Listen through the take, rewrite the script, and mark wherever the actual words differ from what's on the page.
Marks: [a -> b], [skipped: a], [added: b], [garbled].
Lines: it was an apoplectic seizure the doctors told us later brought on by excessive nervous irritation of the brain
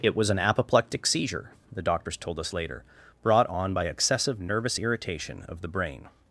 it was an apoplectic seizure the doctors told us later brought on by excessive nervous irritation of the brain